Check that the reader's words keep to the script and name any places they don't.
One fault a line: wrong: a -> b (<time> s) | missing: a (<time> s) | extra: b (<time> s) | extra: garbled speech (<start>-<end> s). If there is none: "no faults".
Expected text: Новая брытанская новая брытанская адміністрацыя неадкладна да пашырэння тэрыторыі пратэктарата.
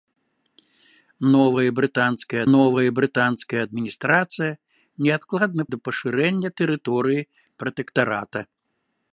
no faults